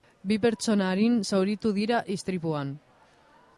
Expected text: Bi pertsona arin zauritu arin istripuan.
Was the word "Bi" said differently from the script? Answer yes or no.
no